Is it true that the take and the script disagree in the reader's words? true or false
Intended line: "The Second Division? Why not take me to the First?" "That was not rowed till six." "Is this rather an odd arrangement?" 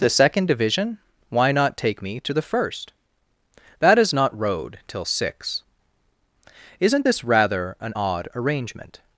true